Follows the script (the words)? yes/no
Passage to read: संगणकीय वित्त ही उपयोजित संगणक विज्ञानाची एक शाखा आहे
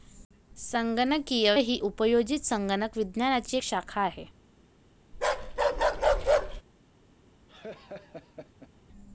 no